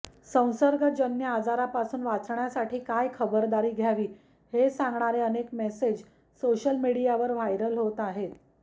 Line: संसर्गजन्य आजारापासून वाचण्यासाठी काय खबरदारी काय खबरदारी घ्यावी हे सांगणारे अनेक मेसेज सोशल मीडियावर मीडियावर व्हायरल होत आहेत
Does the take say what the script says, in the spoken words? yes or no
no